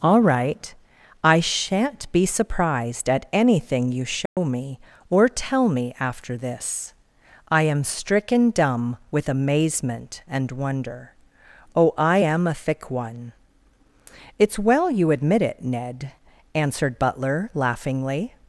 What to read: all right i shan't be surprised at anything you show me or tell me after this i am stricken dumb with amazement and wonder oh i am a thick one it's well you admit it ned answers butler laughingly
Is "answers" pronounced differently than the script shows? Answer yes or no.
yes